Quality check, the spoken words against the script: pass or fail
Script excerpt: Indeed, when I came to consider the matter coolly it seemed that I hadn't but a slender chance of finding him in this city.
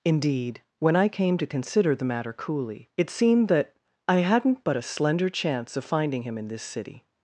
pass